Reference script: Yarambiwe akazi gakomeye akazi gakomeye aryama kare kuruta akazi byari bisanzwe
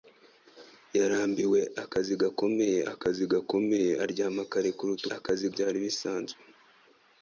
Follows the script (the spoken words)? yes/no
yes